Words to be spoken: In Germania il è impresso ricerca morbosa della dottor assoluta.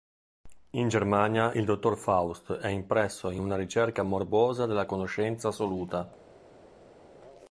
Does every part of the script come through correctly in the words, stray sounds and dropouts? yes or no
no